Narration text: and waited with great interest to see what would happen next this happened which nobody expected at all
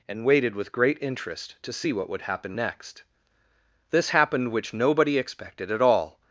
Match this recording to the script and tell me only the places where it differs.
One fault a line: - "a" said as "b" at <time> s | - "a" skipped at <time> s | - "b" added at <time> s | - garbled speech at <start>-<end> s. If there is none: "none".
none